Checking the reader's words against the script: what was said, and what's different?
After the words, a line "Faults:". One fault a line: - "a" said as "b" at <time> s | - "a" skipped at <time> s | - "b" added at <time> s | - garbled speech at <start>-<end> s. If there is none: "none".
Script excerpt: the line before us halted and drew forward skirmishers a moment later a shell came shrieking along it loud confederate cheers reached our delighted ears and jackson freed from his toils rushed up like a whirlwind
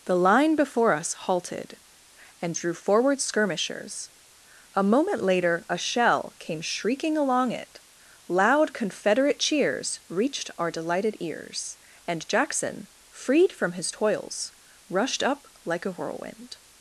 the line before us halted and drew forward skirmishers a moment later a shell came shrieking along it loud confederate cheers reached our delighted ears and jackson freed from his toils rushed up like a whirlwind
Faults:
none